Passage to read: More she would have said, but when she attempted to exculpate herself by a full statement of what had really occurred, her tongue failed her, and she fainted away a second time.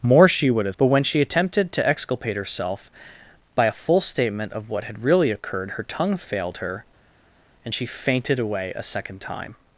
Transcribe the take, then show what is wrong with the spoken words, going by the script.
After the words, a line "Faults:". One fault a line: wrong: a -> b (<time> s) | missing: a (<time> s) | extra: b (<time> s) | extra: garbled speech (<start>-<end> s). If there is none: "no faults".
More she would have but when she attempted to exculpate herself by a full statement of what had really occurred, her tongue failed her, and she fainted away a second time.
Faults:
missing: said (0.8 s)